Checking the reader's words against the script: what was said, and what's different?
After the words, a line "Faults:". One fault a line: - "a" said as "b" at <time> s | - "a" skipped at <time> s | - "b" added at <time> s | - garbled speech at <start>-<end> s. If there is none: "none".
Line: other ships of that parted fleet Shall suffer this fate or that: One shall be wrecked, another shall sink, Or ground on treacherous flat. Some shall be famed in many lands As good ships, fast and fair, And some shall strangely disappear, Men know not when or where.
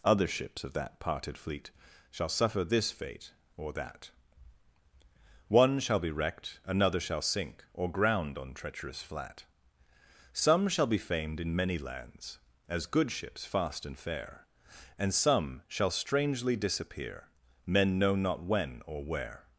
other ships of that parted fleet Shall suffer this fate or that: One shall be wrecked, another shall sink, Or ground on treacherous flat. Some shall be famed in many lands As good ships, fast and fair, And some shall strangely disappear, Men know not when or where.
Faults:
none